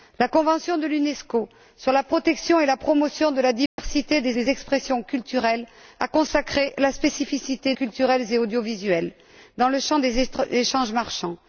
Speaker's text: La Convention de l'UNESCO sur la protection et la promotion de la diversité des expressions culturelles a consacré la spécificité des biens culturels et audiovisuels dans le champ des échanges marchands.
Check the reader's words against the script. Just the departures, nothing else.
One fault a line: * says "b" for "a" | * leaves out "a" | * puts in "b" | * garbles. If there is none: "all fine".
* puts in "des"
* leaves out "des biens"